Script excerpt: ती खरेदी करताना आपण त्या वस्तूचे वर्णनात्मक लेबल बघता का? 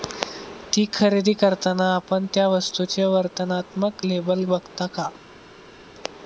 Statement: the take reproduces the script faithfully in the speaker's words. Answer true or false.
true